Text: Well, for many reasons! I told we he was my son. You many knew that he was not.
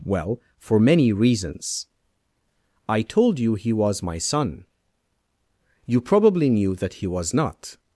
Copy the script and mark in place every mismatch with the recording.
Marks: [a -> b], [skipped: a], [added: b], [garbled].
Well, for many reasons! I told [we -> you] he was my son. You [many -> probably] knew that he was not.